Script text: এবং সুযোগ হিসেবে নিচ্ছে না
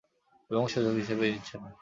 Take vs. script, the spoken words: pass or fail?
pass